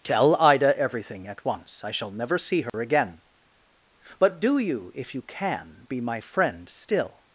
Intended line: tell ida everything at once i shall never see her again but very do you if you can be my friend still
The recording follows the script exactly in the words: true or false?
false